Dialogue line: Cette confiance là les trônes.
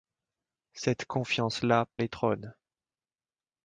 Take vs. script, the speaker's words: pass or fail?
pass